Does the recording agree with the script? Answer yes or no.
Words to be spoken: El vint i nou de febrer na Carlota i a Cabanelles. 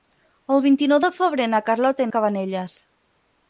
yes